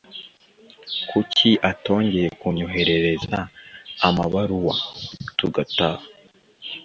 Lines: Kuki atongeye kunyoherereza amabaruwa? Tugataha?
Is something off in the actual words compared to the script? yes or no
no